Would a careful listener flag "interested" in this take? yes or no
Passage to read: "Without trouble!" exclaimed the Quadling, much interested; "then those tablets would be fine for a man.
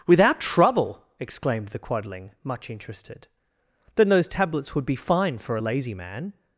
no